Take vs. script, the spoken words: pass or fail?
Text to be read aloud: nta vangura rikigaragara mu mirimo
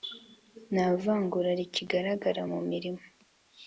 pass